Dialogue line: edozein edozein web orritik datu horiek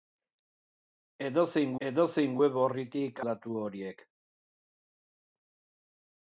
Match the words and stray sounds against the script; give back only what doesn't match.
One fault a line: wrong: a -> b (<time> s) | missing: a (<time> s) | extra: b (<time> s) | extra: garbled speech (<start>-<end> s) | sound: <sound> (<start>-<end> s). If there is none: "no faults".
no faults